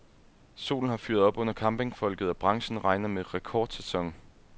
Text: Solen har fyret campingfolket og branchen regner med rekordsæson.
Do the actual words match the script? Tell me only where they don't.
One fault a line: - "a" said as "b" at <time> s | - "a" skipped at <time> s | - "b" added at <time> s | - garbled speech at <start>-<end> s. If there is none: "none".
- "op under" added at 1.2 s